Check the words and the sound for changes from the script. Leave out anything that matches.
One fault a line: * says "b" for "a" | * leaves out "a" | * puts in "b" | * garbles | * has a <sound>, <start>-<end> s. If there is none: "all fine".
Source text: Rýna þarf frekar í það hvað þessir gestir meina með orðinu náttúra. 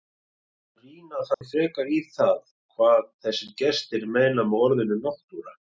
* has a dropout, 1.3-1.4 s